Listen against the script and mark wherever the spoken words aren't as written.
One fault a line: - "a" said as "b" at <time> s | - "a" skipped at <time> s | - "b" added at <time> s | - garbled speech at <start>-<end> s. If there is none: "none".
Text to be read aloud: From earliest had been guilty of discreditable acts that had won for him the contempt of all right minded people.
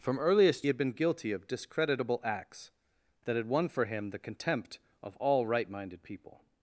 none